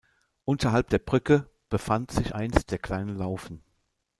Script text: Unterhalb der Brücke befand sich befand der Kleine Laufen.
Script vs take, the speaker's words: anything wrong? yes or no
yes